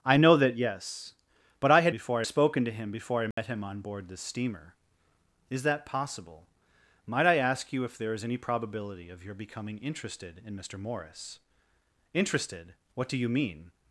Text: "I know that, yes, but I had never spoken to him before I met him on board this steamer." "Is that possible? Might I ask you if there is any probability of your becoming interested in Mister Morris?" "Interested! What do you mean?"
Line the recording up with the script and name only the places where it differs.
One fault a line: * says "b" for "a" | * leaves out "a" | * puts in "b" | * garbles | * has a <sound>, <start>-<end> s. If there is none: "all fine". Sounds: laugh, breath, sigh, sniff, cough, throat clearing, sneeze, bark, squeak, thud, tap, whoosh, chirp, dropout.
* says "before" for "never"
* has a dropout, 3.3-3.4 s